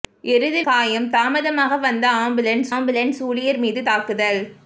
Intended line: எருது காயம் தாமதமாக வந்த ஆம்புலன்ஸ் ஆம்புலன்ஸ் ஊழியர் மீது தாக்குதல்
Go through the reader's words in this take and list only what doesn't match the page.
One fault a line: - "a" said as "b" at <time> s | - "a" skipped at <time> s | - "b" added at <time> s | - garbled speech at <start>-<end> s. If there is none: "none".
none